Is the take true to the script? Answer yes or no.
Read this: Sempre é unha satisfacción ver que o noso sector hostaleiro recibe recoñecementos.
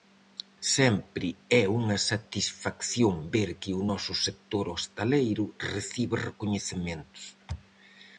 yes